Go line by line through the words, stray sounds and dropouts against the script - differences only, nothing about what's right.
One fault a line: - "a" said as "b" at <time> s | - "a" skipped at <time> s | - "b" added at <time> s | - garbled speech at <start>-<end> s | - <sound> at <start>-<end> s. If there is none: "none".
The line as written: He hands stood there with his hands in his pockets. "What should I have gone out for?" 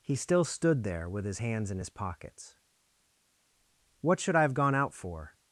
- "hands" said as "still" at 0.1 s